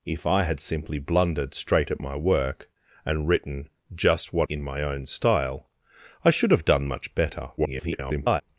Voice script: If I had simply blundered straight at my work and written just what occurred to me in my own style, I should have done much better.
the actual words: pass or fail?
fail